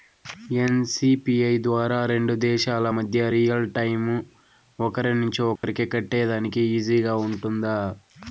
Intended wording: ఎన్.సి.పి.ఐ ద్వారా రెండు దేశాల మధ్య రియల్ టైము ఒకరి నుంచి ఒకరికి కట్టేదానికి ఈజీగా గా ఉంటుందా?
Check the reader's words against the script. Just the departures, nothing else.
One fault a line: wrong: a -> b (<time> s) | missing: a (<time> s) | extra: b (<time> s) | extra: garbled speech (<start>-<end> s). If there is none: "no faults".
no faults